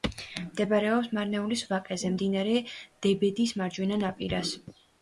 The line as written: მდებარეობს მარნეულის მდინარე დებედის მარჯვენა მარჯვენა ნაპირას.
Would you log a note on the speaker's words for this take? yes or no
yes